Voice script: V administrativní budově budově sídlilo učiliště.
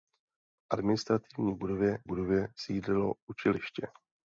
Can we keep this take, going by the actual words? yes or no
yes